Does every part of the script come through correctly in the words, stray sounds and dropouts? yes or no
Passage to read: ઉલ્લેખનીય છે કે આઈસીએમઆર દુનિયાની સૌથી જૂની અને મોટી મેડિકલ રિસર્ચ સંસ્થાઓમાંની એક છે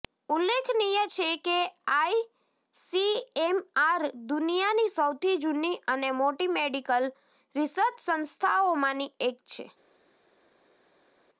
yes